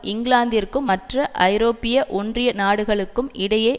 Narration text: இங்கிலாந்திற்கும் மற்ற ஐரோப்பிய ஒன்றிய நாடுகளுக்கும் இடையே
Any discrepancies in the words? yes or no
no